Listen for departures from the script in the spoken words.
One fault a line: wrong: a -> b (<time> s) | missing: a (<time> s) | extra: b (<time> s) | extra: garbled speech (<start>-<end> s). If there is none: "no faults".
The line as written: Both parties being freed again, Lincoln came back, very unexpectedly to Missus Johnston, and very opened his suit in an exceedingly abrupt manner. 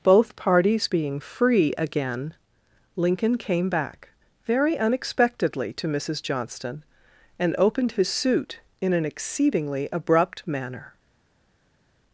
wrong: freed -> free (1.2 s)
missing: very (7.5 s)